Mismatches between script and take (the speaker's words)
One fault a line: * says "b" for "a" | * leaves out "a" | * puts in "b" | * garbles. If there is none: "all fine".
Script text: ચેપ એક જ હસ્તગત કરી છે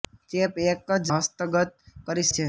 all fine